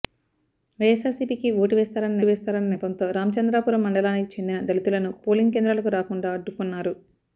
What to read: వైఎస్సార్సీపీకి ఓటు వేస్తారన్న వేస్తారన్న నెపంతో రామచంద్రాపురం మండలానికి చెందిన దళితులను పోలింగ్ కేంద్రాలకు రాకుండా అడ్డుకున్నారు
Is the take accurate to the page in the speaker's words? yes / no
yes